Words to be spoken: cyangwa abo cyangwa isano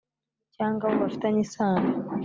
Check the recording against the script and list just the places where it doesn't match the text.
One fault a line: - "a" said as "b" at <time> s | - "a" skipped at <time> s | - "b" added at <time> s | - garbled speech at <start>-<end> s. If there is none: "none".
- "cyangwa" said as "bafitanye" at 1.0 s